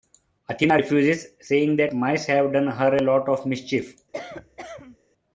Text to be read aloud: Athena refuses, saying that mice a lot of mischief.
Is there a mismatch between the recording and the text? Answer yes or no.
yes